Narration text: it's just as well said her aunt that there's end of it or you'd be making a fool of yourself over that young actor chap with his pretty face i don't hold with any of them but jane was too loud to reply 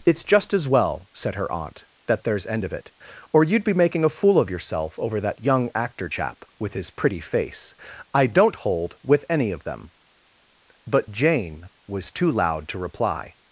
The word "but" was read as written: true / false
true